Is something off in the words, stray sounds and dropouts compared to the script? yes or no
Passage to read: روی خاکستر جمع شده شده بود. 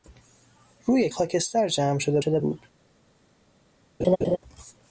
yes